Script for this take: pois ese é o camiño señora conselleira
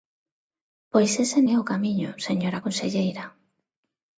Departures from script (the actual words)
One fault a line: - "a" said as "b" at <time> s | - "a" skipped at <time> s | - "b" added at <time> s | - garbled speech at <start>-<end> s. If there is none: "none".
none